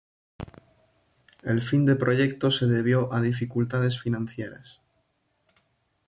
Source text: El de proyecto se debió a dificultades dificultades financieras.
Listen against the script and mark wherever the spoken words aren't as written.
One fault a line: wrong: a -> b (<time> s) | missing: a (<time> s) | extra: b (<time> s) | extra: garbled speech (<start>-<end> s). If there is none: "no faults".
extra: fin (1.6 s)
missing: dificultades (4.0 s)